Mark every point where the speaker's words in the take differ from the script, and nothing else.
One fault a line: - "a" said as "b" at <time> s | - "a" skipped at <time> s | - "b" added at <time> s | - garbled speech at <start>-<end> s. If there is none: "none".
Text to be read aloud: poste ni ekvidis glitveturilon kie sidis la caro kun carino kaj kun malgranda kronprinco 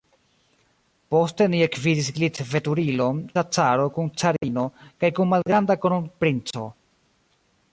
- "kie sidis" skipped at 3.2 s